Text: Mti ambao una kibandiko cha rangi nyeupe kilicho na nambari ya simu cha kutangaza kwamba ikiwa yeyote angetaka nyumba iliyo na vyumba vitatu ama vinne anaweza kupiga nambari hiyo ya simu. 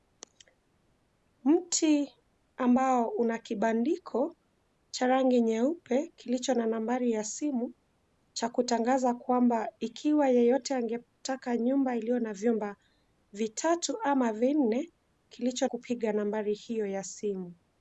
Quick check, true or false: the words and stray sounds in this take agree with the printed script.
false